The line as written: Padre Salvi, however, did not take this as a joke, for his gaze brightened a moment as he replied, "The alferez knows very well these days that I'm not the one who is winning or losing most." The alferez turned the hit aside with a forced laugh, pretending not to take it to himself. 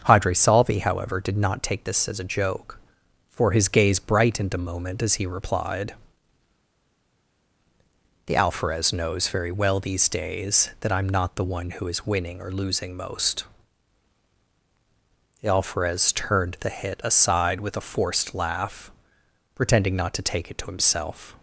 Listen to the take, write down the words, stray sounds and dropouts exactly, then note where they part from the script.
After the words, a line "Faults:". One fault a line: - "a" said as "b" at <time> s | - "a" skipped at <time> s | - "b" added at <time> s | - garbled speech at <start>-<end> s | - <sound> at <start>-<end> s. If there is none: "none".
Padre Salvi, however, did not take this as a joke, for his gaze brightened a moment as he replied, "The alferez knows very well these days that I'm not the one who is winning or losing most." The alferez turned the hit aside with a forced laugh, pretending not to take it to himself.
Faults:
none